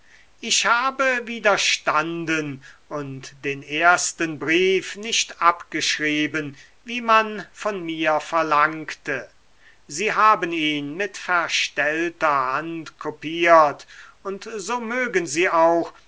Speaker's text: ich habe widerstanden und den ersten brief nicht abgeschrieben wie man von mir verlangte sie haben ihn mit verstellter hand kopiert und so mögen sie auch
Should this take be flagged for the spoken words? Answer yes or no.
no